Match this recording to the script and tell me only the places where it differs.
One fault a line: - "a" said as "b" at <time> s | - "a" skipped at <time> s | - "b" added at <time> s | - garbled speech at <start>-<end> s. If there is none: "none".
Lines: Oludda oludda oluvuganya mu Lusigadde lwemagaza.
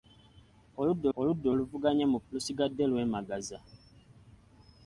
none